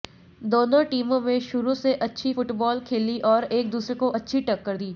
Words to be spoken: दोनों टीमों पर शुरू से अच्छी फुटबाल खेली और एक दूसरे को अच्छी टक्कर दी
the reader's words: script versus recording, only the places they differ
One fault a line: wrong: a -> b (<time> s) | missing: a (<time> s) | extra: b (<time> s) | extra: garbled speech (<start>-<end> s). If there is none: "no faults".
wrong: पर -> में (1.2 s)